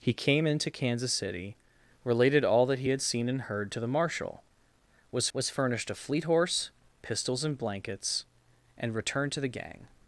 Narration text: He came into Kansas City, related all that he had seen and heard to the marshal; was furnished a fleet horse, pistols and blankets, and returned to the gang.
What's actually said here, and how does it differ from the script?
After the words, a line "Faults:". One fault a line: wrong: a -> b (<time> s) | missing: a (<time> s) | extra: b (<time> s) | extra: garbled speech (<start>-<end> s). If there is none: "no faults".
He came into Kansas City, related all that he had seen and heard to the marshal; was was furnished a fleet horse, pistols and blankets, and returned to the gang.
Faults:
extra: was (5.3 s)